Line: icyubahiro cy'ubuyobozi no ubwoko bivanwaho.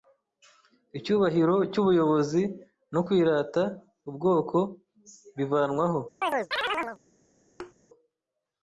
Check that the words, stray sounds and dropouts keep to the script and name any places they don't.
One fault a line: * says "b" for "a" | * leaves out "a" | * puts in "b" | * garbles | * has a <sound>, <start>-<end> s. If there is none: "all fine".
* puts in "kwirata"
* has a chirp, 6.2-7.0 s
* has a thud, 7.6-7.7 s